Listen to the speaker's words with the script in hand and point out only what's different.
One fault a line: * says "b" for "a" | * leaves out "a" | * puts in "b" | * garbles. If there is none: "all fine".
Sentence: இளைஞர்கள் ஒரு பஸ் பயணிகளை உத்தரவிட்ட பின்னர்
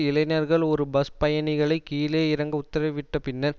* puts in "கீழே இறங்க"